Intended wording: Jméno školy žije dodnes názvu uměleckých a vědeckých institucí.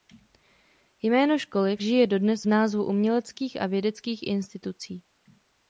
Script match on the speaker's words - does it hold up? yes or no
yes